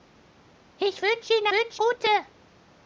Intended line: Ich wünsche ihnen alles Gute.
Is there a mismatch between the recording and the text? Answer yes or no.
yes